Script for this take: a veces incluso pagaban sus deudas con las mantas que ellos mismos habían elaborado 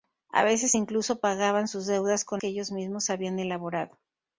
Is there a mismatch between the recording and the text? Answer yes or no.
yes